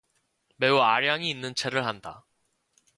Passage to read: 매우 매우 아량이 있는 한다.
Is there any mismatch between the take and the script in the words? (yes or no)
yes